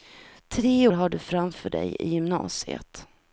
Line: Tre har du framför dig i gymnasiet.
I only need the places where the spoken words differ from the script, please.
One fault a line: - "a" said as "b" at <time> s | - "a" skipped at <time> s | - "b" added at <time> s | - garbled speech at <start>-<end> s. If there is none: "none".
none